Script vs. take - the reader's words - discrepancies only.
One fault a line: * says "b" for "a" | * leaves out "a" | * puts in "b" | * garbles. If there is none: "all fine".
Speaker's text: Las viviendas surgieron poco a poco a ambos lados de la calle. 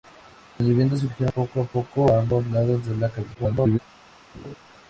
* garbles